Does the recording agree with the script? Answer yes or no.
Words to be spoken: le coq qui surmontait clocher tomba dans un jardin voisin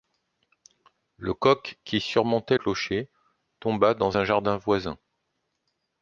yes